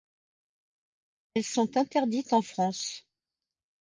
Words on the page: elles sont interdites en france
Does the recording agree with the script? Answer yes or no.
yes